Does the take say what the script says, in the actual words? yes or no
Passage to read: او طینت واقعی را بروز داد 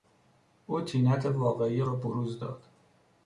yes